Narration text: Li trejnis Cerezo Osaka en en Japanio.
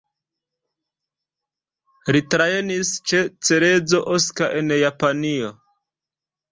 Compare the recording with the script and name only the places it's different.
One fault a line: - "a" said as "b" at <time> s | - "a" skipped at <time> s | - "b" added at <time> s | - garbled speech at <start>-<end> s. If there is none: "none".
- "ĉe" added at 3.1 s
- "en" skipped at 4.8 s